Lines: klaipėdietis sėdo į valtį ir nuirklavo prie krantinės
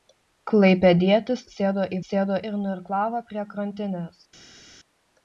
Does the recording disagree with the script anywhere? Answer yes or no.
yes